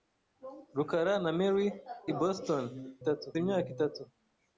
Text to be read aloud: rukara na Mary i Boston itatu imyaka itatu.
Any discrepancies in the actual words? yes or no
no